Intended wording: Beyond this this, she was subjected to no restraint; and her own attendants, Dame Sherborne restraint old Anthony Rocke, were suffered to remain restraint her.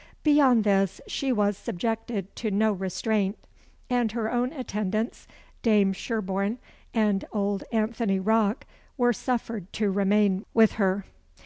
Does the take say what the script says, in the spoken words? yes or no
no